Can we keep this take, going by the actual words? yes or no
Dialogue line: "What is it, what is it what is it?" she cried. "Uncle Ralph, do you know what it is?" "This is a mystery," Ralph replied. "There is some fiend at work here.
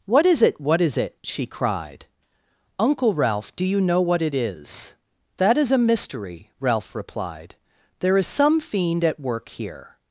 no